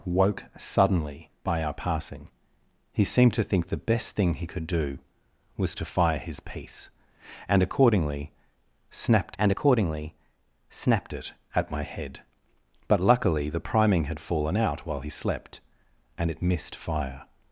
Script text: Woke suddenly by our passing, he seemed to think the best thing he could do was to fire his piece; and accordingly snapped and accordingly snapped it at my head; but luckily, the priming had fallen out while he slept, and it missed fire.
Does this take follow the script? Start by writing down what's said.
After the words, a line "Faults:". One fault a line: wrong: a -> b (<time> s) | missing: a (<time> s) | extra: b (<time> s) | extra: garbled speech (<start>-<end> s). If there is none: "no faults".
Woke suddenly by our passing, he seemed to think the best thing he could do was to fire his piece; and accordingly snapped and accordingly snapped it at my head; but luckily, the priming had fallen out while he slept, and it missed fire.
Faults:
no faults